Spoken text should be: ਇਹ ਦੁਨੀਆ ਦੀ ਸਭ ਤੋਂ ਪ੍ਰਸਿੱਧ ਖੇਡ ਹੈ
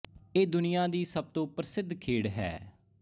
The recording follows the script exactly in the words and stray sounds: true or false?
true